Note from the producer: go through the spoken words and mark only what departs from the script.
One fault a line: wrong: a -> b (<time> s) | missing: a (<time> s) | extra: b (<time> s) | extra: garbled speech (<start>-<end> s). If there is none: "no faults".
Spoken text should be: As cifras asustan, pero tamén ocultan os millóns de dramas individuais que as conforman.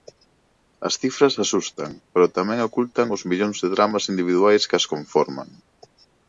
no faults